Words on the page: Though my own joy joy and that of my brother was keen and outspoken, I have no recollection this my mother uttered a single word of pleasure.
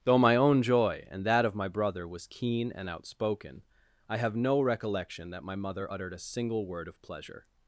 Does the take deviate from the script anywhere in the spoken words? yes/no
yes